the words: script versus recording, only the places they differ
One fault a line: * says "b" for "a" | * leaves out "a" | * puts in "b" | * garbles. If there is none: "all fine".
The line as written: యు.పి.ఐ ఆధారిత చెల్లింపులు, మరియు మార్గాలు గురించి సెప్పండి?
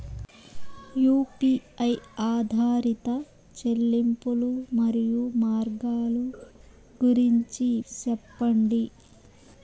all fine